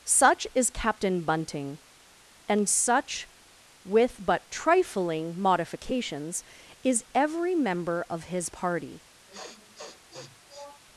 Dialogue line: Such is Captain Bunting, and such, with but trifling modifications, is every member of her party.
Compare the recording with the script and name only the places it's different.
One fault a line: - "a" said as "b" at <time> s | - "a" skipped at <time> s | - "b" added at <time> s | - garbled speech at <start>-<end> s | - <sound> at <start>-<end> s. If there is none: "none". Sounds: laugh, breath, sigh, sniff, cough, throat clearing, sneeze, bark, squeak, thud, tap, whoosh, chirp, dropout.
- "her" said as "his" at 8.2 s
- sniff at 9.3-10.8 s